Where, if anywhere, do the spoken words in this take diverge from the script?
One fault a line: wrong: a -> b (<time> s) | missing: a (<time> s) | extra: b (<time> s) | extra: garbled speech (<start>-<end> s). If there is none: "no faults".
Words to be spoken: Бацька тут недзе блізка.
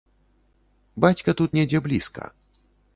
no faults